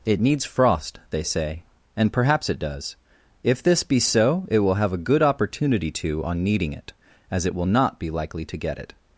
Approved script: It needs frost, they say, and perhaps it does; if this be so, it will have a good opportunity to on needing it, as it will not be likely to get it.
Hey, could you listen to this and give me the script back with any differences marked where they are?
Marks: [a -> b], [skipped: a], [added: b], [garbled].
It needs frost, they say, and perhaps it does; if this be so, it will have a good opportunity to on needing it, as it will not be likely to get it.